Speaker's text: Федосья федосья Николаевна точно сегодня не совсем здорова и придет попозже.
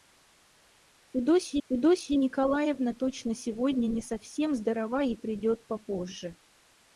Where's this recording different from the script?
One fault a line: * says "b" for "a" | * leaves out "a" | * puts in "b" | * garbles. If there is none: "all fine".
all fine